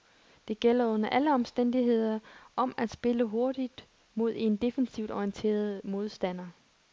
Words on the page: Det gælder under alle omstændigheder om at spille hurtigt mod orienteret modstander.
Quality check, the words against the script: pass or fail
fail